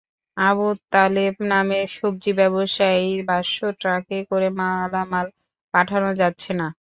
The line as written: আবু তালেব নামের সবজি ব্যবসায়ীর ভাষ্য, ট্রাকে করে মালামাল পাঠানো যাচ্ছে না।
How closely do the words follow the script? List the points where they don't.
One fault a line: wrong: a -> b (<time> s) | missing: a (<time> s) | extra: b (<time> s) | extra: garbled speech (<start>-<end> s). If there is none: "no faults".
no faults